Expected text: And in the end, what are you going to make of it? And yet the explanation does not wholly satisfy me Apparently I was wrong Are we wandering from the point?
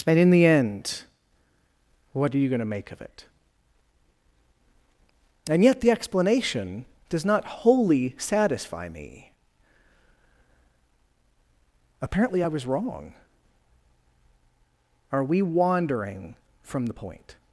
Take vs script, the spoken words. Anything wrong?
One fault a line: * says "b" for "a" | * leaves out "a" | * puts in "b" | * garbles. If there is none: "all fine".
all fine